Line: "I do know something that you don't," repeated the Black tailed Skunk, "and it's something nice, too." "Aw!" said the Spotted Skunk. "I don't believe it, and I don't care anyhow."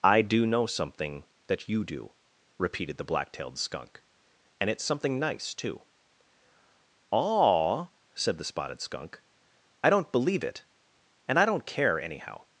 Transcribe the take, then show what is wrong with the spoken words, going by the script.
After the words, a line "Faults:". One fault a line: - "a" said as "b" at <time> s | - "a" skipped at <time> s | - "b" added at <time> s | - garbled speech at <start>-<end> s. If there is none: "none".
"I do know something that you do," repeated the Black tailed Skunk, "and it's something nice, too." "Aw!" said the Spotted Skunk. "I don't believe it, and I don't care anyhow."
Faults:
- "don't" said as "do" at 1.8 s